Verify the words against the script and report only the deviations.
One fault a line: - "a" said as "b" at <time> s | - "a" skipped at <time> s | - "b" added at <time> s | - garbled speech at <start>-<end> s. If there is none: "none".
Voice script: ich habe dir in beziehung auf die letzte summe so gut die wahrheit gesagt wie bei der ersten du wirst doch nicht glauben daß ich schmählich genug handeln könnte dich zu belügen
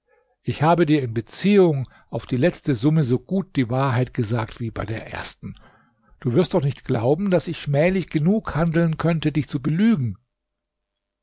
none